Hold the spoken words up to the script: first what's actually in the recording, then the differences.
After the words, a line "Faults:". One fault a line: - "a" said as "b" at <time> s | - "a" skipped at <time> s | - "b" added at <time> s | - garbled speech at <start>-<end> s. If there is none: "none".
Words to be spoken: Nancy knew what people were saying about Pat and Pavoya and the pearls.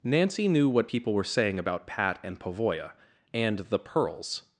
Nancy knew what people were saying about Pat and Pavoya and the pearls.
Faults:
none